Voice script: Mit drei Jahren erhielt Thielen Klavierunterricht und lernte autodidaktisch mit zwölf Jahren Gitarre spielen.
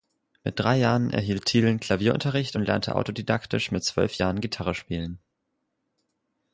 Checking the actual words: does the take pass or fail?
pass